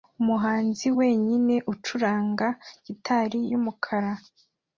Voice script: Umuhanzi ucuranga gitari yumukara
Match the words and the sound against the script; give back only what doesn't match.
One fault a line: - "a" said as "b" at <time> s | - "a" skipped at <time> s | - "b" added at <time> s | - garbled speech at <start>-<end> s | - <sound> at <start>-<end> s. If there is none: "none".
- "wenyine" added at 1.0 s